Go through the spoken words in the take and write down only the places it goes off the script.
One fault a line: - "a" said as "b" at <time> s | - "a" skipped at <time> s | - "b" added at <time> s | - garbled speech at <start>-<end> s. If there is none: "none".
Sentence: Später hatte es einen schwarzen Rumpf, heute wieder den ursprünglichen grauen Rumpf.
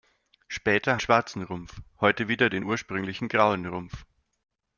- "hatte es einen" skipped at 1.0 s